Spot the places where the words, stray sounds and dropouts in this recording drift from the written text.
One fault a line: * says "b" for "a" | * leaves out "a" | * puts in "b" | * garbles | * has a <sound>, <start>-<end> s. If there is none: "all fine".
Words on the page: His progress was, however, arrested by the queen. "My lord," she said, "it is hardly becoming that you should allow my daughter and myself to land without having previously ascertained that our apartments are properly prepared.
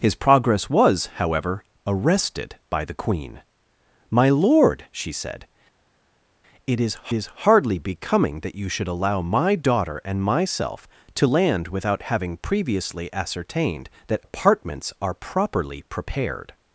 * puts in "is"
* leaves out "our"